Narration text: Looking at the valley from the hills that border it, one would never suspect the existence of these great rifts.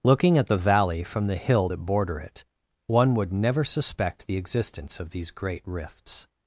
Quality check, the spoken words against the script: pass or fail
fail